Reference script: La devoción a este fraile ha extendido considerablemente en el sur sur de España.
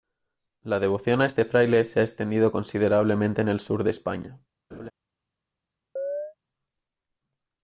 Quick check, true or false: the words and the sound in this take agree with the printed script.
false